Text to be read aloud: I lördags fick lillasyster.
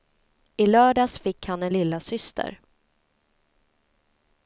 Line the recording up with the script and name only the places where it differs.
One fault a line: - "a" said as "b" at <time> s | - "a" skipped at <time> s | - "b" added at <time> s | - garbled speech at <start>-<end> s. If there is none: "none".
- "han en" added at 1.4 s